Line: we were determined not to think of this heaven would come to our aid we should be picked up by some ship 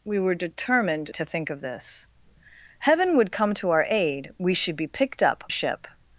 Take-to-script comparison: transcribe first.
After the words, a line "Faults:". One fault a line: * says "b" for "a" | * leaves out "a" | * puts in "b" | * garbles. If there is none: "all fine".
we were determined to think of this heaven would come to our aid we should be picked up ship
Faults:
* leaves out "not"
* leaves out "by some"